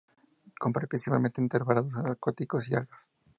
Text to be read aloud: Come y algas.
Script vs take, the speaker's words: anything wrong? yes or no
yes